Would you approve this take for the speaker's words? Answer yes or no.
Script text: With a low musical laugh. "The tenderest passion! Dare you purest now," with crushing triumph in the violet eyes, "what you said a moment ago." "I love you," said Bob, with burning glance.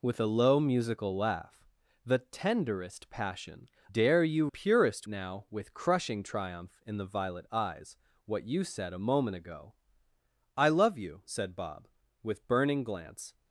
yes